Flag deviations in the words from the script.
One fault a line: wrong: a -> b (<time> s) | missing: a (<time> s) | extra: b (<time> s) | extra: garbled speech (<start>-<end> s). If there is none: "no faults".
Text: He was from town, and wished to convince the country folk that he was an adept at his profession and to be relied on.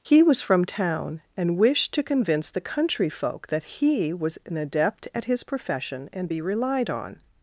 missing: to (6.3 s)